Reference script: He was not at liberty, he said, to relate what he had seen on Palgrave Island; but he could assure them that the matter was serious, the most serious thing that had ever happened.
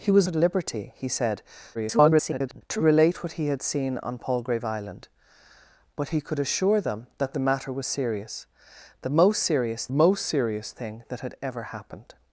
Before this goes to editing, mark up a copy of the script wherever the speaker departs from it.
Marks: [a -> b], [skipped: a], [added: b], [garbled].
He was [skipped: not] at liberty, he said, [garbled] to relate what he had seen on Palgrave Island; but he could assure them that the matter was serious, the most serious [added: most serious] thing that had ever happened.